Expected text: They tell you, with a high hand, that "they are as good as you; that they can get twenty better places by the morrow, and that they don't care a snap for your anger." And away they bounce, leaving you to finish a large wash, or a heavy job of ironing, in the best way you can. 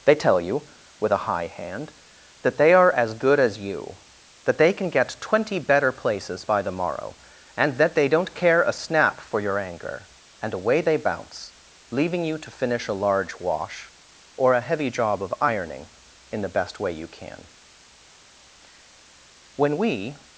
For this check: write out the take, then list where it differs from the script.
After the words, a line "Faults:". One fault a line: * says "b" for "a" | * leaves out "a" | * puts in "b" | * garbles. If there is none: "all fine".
They tell you, with a high hand, that "they are as good as you; that they can get twenty better places by the morrow, and that they don't care a snap for your anger." And away they bounce, leaving you to finish a large wash, or a heavy job of ironing, in the best way you can. When we
Faults:
* puts in "When we"